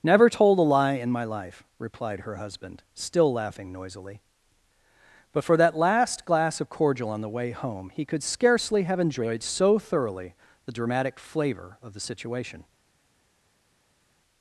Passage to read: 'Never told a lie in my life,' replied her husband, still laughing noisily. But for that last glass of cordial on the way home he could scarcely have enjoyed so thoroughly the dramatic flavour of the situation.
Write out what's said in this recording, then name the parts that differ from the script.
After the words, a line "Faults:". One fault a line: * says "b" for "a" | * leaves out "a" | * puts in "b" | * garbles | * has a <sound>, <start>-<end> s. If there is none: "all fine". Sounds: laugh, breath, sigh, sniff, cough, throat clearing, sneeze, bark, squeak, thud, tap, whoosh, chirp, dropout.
'Never told a lie in my life,' replied her husband, still laughing noisily. But for that last glass of cordial on the way home he could scarcely have enjoyed so thoroughly the dramatic flavour of the situation.
Faults:
all fine